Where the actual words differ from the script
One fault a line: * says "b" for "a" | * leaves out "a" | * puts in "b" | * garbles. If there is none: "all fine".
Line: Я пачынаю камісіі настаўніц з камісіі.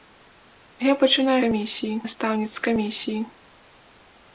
all fine